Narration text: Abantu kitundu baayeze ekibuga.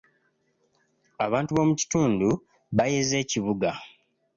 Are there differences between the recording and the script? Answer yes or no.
yes